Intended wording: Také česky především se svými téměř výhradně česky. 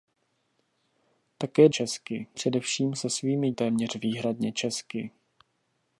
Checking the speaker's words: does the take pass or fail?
pass